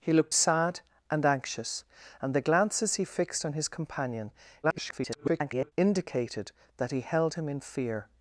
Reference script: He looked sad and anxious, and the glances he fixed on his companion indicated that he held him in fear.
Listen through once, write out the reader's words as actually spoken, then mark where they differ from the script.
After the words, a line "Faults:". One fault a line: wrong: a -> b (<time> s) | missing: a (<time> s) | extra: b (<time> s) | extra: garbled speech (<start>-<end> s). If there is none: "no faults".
He looked sad and anxious, and the glances he fixed on his companion [garbled] indicated that he held him in fear.
Faults:
extra: garbled speech (4.6-5.7 s)